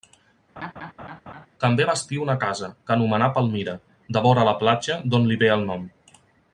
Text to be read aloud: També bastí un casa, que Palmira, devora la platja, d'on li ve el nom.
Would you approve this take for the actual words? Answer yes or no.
no